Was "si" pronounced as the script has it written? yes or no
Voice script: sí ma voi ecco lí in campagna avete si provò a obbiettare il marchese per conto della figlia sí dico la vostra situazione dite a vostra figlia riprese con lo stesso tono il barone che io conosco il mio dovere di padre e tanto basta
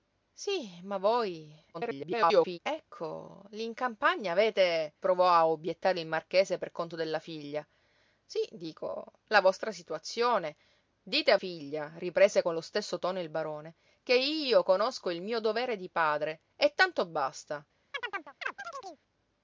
no